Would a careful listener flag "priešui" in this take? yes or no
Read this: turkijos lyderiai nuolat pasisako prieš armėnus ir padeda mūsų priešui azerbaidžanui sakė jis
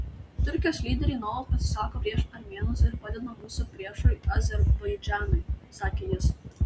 no